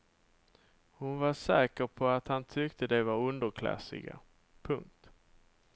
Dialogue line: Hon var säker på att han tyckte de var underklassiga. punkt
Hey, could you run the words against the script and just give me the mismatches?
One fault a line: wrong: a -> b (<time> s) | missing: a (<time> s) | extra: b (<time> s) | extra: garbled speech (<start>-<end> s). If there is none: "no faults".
no faults